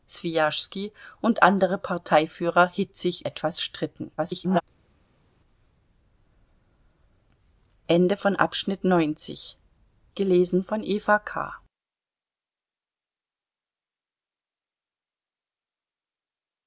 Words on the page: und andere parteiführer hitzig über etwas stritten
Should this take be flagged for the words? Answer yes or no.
yes